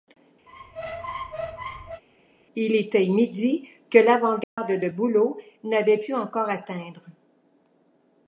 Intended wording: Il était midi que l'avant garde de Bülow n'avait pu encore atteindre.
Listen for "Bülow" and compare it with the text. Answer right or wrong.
right